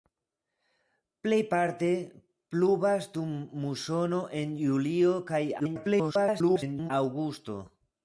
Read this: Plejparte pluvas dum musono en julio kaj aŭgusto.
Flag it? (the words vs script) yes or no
yes